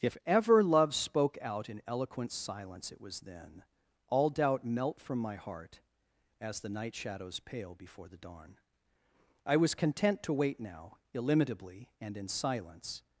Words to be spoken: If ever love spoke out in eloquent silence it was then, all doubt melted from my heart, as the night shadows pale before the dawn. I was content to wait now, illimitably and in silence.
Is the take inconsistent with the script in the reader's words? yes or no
yes